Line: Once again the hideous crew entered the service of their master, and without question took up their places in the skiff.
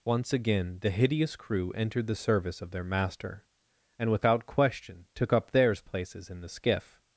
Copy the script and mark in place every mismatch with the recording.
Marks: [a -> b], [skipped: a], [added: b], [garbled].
Once again the hideous crew entered the service of their master, and without question took up [their -> theirs] places in the skiff.